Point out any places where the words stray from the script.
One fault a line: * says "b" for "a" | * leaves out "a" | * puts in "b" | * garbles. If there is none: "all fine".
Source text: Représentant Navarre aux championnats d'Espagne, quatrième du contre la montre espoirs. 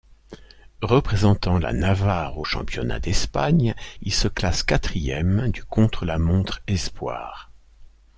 * puts in "la"
* puts in "il se classe"